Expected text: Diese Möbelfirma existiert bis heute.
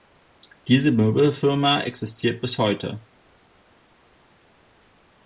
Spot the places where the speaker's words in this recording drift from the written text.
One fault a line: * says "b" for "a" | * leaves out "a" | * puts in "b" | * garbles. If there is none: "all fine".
all fine